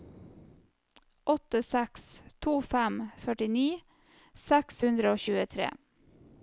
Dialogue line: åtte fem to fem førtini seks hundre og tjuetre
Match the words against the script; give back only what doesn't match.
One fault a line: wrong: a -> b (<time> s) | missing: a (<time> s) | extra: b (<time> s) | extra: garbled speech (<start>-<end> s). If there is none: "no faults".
wrong: fem -> seks (1.7 s)